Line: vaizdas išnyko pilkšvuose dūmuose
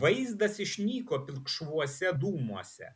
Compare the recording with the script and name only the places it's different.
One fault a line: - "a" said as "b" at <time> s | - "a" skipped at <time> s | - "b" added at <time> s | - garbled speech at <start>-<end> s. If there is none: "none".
none